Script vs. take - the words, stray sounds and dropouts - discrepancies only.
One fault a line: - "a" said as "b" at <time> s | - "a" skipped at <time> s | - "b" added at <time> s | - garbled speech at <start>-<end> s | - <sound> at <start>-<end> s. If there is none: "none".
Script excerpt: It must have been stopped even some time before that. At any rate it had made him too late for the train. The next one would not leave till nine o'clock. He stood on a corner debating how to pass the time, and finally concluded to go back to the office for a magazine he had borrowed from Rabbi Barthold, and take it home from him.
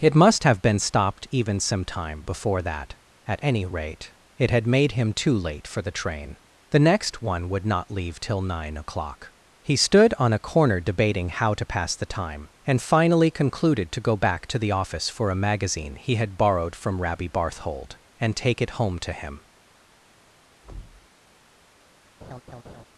- "from" said as "to" at 19.0 s
- thud at 20.6-21.1 s
- laugh at 22.2-22.9 s